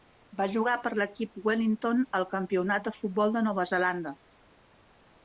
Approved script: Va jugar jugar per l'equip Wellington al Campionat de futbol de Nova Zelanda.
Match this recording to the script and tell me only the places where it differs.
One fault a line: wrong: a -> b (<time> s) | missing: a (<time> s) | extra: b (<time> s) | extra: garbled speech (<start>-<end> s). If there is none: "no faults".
missing: jugar (0.7 s)